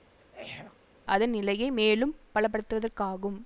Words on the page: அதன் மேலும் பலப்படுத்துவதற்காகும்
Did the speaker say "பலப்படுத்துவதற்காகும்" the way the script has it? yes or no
yes